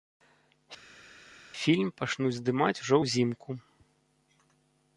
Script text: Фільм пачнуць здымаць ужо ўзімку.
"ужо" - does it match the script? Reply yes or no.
yes